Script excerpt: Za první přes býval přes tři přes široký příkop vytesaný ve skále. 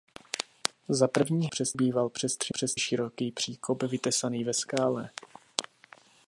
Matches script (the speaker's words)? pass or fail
pass